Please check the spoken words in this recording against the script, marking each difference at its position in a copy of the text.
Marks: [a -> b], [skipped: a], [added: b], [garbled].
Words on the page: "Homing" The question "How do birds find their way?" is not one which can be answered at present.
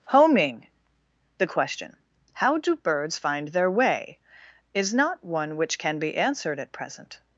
"Homing" The question "How do birds find their way?" is not one which can be answered at present.